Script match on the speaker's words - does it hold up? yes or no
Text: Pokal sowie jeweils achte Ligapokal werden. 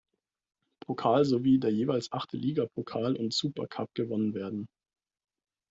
no